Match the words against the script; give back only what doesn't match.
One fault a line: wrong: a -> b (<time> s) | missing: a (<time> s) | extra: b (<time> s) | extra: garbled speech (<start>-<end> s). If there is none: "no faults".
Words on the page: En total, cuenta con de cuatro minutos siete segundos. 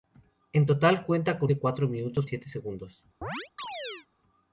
no faults